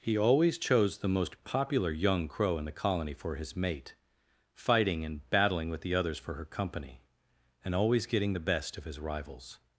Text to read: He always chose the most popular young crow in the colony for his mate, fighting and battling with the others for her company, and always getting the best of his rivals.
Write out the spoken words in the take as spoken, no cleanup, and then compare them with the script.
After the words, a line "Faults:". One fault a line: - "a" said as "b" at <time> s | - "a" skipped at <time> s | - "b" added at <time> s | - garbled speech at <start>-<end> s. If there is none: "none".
He always chose the most popular young crow in the colony for his mate, fighting and battling with the others for her company, and always getting the best of his rivals.
Faults:
none